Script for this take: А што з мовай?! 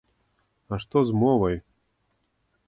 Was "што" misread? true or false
false